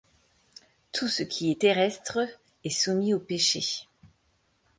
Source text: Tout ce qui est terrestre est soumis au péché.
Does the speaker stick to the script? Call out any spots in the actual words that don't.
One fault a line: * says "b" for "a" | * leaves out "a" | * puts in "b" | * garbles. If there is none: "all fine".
all fine